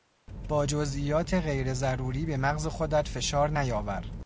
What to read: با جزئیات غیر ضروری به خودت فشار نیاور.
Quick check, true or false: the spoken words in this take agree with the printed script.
false